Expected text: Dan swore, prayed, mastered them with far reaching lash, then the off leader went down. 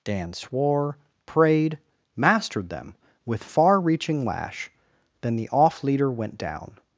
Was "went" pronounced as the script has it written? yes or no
yes